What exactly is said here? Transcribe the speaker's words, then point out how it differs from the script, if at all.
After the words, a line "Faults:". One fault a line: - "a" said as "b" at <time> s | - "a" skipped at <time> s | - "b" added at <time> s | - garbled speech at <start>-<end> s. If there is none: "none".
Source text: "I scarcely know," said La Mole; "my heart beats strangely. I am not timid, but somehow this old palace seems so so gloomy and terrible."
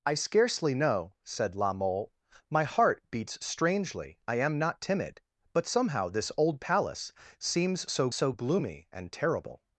"I scarcely know," said La Mole; "my heart beats strangely. I am not timid, but somehow this old palace seems so so gloomy and terrible."
Faults:
none